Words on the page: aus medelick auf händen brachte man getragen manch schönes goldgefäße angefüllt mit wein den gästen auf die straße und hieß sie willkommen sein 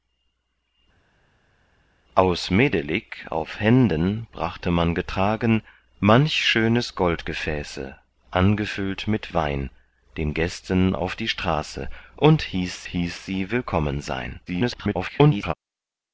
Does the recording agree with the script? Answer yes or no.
no